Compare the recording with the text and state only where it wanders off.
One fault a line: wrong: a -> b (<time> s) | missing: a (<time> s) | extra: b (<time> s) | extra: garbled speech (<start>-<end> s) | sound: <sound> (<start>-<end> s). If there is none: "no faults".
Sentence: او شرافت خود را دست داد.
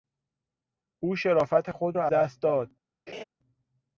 sound: laugh (3.1-3.2 s)